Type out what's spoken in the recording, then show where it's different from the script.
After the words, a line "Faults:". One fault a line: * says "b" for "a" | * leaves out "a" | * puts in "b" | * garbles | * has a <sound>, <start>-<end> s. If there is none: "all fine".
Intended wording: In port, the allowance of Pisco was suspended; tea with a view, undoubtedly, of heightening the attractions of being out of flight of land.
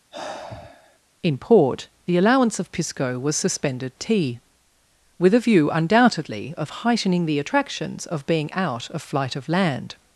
In port, the allowance of Pisco was suspended; tea with a view, undoubtedly, of heightening the attractions of being out of flight of land.
Faults:
* has a sigh, 0.1-1.0 s